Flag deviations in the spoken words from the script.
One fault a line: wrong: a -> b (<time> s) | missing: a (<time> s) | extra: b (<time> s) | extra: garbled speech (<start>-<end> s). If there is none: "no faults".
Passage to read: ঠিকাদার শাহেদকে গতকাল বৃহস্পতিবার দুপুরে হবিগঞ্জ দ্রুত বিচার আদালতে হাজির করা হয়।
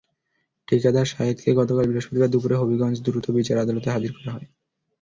no faults